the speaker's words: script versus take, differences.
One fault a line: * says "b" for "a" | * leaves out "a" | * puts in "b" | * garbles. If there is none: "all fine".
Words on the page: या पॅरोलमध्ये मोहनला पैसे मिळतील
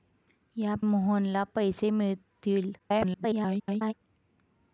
* leaves out "पॅरोलमध्ये"
* garbles